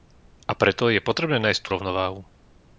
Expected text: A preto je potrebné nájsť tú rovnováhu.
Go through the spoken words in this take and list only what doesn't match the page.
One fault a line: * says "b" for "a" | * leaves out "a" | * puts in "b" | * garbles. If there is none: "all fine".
all fine